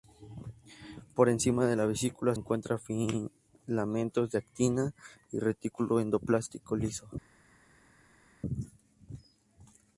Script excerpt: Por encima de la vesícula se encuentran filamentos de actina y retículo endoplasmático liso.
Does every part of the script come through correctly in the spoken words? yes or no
no